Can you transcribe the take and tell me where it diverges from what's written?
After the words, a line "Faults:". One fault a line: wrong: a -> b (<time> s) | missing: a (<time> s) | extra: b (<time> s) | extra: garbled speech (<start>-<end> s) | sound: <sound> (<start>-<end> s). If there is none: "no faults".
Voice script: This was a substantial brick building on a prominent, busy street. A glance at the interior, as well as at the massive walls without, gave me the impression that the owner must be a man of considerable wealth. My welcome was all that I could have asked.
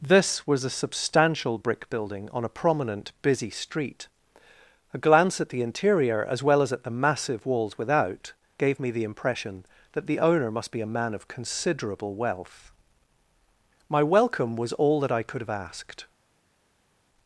This was a substantial brick building on a prominent, busy street. A glance at the interior, as well as at the massive walls without, gave me the impression that the owner must be a man of considerable wealth. My welcome was all that I could have asked.
Faults:
no faults